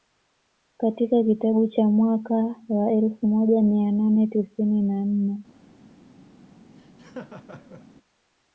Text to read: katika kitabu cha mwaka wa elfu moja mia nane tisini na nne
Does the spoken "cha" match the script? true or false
true